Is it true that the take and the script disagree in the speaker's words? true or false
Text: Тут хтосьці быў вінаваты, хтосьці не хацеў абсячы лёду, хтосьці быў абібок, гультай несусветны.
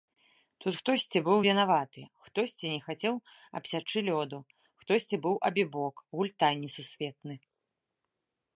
false